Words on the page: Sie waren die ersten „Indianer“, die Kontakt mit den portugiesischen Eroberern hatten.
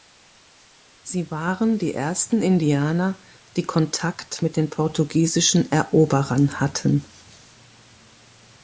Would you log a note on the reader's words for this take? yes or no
no